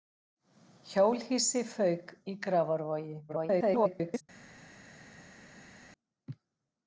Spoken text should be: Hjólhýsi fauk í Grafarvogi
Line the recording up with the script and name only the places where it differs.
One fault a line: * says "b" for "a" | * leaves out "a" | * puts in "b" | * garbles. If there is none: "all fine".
* garbles